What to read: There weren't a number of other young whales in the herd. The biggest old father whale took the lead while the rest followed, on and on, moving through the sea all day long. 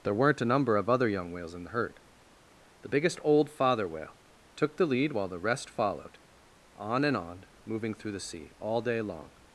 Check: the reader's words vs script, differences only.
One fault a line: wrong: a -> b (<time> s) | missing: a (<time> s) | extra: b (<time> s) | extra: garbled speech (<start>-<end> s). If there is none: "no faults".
no faults